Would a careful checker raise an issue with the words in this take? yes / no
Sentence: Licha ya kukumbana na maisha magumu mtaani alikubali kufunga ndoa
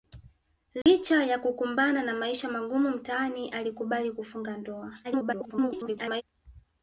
yes